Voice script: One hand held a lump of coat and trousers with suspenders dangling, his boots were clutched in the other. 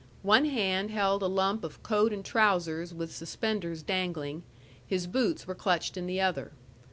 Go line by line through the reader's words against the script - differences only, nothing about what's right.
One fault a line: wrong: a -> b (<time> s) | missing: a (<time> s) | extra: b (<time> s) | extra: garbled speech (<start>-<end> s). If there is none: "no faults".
no faults